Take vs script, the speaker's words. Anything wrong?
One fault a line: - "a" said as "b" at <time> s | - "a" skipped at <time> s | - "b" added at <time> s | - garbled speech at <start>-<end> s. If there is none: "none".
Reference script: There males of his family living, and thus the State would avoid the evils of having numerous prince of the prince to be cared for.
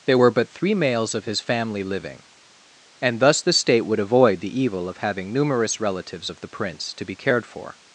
- "were but three" added at 0.1 s
- "evils" said as "evil" at 4.6 s
- "prince" said as "relatives" at 5.8 s